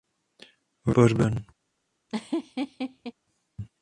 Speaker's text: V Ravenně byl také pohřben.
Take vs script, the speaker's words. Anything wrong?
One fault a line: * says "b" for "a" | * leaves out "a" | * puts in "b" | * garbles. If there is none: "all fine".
* leaves out "Ravenně byl také"